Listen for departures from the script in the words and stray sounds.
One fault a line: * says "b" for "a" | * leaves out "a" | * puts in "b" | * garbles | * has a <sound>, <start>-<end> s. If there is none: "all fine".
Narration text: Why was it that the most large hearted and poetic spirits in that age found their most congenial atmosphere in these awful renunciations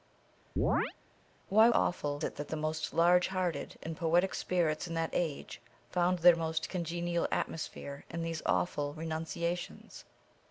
* has a chirp, 0.6-0.9 s
* says "awful" for "was"